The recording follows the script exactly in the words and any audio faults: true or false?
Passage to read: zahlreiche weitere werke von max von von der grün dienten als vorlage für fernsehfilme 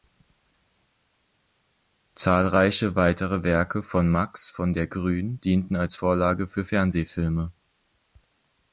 false